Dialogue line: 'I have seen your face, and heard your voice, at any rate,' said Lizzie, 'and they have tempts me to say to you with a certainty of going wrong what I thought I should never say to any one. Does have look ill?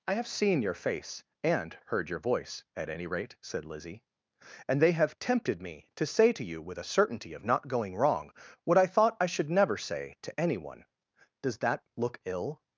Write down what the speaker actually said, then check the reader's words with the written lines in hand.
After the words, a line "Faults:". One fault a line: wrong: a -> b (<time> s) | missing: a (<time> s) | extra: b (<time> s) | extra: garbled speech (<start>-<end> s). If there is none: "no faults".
'I have seen your face, and heard your voice, at any rate,' said Lizzie, 'and they have tempted me to say to you with a certainty of not going wrong what I thought I should never say to any one. Does that look ill?
Faults:
wrong: tempts -> tempted (5.2 s)
extra: not (7.4 s)
wrong: have -> that (11.6 s)